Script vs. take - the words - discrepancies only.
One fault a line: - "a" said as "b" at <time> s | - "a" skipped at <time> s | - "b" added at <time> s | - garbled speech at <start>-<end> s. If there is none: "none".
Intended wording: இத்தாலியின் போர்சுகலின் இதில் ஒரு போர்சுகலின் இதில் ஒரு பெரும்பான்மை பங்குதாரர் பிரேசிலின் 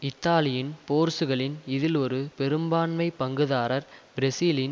- "போர்சுகலின் இதில் ஒரு" skipped at 2.2 s